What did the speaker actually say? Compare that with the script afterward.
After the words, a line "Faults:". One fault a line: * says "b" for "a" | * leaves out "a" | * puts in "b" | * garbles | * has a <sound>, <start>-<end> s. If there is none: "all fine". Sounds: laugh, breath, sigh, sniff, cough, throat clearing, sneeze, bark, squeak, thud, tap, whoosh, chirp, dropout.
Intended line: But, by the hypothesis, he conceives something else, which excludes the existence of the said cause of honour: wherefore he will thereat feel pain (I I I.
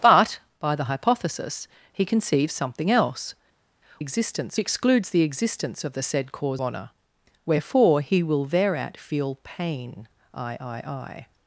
But, by the hypothesis, he conceives something else, existence excludes the existence of the said cause honour: wherefore he will thereat feel pain (I I I.
Faults:
* says "existence" for "which"
* leaves out "of"